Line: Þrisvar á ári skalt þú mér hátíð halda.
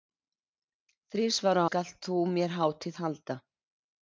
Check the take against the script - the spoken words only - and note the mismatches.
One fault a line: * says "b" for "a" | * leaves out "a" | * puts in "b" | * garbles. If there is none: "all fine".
* leaves out "ári"